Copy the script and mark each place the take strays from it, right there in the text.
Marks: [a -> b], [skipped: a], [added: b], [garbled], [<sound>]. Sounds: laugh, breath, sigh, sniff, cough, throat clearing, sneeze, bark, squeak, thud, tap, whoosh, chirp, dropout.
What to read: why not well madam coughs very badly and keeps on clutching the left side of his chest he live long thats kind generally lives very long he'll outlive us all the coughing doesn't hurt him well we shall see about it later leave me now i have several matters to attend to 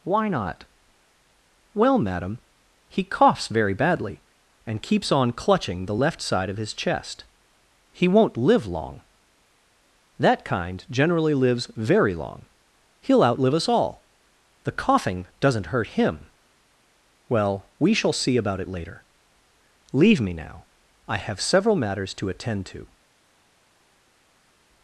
why not well madam [added: he] coughs very badly and keeps on clutching the left side of his chest he [added: won't] live long [thats -> that] kind generally lives very long he'll outlive us all the coughing doesn't hurt him well we shall see about it later leave me now i have several matters to attend to